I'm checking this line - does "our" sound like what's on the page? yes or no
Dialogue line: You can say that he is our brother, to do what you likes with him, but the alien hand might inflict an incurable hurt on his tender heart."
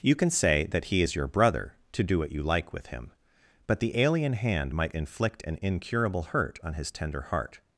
no